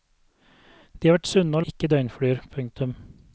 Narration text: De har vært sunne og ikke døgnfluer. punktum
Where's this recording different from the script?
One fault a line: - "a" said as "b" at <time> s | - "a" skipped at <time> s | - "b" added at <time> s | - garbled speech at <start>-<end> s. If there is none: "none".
none